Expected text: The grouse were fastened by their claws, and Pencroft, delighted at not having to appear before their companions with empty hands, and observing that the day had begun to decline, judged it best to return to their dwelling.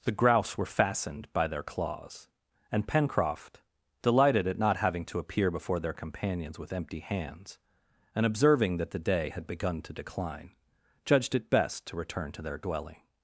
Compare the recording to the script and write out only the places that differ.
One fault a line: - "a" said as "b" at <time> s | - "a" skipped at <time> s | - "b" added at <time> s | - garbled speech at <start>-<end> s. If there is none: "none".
none